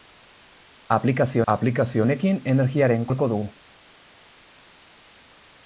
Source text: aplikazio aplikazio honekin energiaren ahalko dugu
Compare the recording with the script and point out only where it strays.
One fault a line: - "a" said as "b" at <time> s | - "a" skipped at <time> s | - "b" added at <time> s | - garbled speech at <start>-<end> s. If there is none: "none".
none